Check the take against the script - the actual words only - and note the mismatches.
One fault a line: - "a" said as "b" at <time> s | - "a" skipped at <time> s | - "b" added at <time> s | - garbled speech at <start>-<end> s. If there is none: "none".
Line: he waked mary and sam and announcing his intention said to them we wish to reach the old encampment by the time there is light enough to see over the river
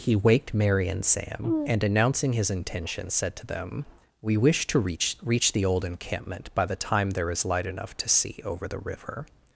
- "reach" added at 5.2 s